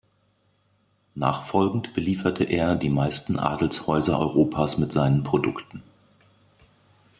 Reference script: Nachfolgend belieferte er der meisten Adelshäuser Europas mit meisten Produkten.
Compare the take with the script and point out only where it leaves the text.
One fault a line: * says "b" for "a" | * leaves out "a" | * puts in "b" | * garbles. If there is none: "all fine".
* says "die" for "der"
* says "seinen" for "meisten"